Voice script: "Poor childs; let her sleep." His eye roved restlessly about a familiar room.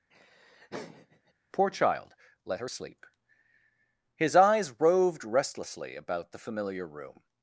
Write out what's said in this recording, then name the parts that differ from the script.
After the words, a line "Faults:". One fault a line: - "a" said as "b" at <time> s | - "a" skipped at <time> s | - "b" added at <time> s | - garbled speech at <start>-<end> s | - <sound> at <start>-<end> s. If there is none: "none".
"Poor child; let her sleep." His eyes roved restlessly about the familiar room.
Faults:
- laugh at 0.1-1.3 s
- "childs" said as "child" at 1.7 s
- "eye" said as "eyes" at 4.3 s
- "a" said as "the" at 6.3 s